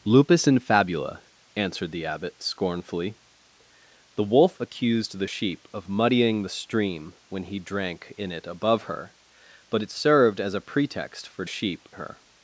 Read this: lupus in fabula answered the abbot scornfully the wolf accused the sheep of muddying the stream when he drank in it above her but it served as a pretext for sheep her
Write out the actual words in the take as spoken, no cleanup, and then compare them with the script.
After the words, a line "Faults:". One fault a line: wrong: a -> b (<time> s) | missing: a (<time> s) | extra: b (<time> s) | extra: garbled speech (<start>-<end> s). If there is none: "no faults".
lupus in fabula answered the abbot scornfully the wolf accused the sheep of muddying the stream when he drank in it above her but it served as a pretext for sheep her
Faults:
no faults